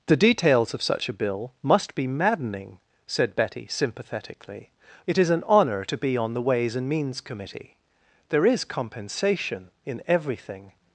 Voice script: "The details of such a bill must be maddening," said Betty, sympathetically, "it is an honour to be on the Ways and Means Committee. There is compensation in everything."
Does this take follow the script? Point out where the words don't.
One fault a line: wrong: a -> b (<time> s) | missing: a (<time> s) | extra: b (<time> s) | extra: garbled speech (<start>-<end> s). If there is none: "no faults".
no faults